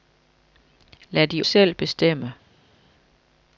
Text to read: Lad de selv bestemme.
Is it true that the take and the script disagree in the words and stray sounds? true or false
false